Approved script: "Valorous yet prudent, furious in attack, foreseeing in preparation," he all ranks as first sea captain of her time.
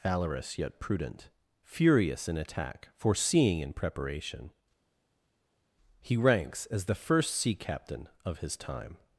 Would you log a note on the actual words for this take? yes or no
yes